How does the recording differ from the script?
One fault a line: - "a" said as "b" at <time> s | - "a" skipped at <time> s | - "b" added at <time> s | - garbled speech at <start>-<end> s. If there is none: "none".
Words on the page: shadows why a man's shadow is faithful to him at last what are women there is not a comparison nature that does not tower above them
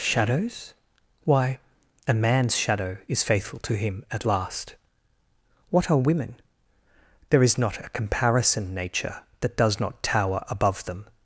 none